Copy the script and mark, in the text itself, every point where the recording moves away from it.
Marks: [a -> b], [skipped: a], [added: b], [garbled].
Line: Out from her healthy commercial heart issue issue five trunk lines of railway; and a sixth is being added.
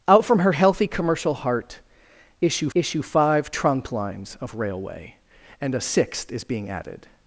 Out from her healthy commercial heart issue issue five trunk lines of railway; and a sixth is being added.